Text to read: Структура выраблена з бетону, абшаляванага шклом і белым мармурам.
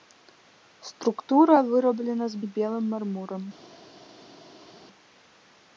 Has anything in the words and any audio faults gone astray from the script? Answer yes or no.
yes